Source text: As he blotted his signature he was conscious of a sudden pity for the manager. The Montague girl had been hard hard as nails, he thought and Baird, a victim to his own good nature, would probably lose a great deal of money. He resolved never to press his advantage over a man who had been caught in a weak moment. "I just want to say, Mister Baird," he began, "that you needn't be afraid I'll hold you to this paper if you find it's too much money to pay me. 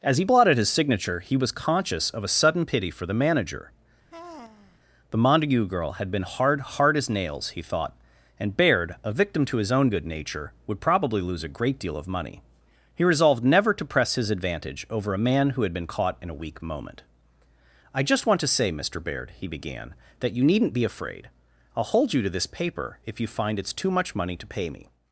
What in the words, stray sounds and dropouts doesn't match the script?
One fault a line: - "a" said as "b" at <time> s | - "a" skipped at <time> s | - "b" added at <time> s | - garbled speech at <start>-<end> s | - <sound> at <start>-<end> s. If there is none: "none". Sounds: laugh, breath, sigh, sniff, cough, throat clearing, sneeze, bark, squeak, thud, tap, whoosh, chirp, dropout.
- sigh at 4.1-4.8 s